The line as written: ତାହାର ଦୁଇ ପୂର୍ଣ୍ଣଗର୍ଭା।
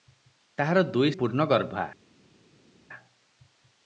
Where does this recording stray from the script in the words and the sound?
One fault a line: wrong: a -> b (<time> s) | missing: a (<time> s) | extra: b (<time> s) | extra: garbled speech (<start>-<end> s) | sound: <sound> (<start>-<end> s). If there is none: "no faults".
no faults